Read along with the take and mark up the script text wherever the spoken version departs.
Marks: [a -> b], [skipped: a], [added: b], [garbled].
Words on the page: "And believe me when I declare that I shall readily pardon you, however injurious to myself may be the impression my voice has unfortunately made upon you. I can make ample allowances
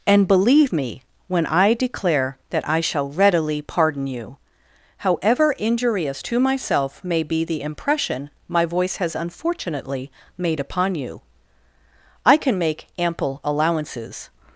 "And believe me when I declare that I shall readily pardon you, however injurious to myself may be the impression my voice has unfortunately made upon you. I can make ample allowances